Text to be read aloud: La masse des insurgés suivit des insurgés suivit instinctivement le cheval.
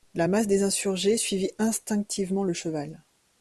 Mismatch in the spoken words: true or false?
true